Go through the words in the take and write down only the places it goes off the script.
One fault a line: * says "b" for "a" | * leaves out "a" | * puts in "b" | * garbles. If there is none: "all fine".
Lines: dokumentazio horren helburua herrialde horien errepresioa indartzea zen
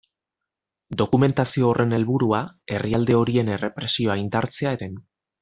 all fine